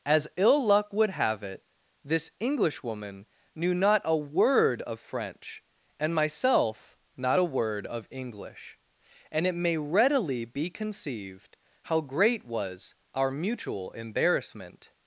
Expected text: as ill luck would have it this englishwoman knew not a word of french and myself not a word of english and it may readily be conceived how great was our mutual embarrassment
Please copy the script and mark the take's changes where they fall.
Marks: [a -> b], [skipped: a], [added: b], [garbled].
as ill luck would have it this englishwoman knew not a word of french and myself not a word of english and it may readily be conceived how great was our mutual embarrassment